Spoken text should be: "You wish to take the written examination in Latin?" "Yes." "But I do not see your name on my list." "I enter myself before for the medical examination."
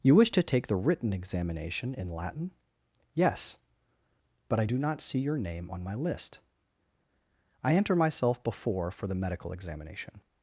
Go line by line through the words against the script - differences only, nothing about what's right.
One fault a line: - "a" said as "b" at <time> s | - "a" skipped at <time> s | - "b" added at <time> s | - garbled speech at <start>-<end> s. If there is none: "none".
none